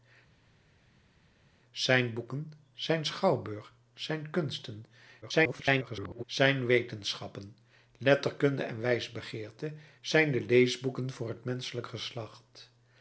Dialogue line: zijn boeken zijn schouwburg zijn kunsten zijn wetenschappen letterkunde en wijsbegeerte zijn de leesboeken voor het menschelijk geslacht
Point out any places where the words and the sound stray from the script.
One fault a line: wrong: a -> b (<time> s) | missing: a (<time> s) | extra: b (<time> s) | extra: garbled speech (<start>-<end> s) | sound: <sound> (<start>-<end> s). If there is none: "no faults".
extra: garbled speech (5.2-6.2 s)